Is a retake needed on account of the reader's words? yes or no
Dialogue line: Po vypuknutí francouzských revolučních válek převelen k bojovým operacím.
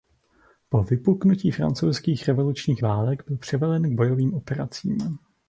yes